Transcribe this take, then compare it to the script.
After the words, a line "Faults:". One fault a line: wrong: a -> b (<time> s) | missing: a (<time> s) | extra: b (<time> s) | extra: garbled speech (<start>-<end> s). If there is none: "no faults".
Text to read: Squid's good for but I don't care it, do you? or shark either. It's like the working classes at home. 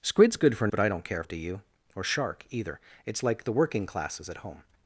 Squid's good for but I don't care it, do you? or shark either. It's like the working classes at home.
Faults:
no faults